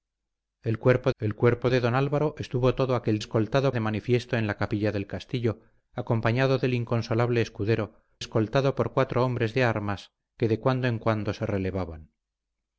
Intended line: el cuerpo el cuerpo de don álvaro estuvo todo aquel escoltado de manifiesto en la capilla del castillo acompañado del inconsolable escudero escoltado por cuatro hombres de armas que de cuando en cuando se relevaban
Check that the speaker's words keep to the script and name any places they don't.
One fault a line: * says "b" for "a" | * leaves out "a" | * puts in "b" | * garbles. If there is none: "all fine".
all fine